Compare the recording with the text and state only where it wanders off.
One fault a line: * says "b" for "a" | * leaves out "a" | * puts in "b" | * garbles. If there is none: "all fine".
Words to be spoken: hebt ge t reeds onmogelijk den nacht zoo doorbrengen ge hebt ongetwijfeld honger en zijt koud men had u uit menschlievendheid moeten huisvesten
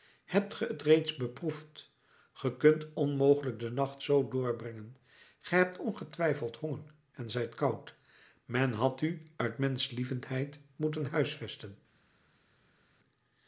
* puts in "beproefd ge kunt"